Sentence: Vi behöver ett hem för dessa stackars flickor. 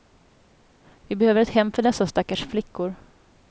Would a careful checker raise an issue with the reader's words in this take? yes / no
no